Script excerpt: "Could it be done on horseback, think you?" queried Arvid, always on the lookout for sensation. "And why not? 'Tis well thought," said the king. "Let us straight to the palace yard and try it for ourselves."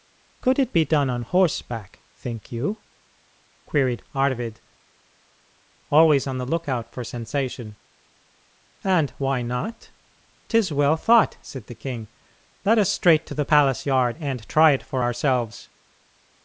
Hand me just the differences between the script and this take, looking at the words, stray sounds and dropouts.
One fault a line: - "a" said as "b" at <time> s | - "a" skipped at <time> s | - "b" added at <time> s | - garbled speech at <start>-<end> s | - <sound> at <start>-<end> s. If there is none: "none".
none